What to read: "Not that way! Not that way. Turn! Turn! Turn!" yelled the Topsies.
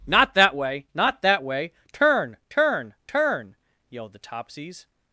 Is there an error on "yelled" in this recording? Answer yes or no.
no